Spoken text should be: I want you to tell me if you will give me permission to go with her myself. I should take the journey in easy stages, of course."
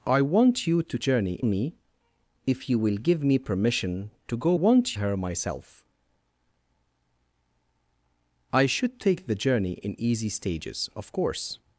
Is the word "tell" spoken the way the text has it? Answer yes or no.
no